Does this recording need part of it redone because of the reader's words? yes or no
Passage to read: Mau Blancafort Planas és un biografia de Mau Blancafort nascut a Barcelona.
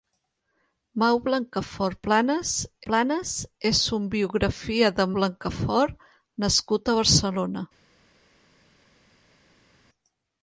yes